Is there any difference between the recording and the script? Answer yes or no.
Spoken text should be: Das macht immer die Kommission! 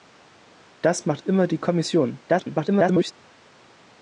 yes